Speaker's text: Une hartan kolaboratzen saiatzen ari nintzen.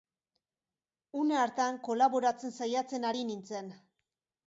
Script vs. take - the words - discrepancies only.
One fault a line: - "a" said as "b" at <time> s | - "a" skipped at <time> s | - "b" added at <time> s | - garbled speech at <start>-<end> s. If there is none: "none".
none